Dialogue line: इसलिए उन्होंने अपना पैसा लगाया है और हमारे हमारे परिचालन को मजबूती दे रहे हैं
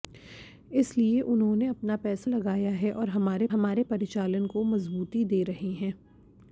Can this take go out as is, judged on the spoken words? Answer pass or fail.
pass